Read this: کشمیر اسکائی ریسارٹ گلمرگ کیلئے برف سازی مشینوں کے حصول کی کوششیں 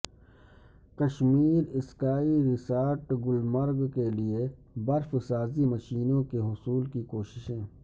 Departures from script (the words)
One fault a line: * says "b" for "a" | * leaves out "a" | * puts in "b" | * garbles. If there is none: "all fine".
all fine